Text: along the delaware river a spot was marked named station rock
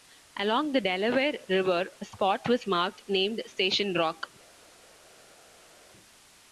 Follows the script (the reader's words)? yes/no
yes